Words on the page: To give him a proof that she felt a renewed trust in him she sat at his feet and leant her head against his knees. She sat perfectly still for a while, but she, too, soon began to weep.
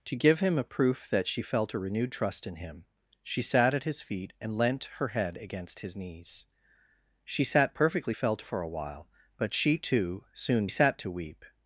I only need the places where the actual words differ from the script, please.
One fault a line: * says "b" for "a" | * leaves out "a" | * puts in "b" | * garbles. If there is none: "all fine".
* says "felt" for "still"
* says "sat" for "began"